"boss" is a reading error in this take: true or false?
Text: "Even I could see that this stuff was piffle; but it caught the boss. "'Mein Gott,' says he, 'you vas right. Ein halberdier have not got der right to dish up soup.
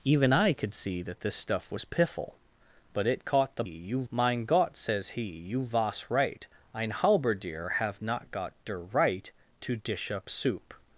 true